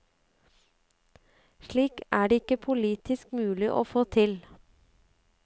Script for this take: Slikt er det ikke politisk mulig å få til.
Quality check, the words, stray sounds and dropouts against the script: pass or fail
pass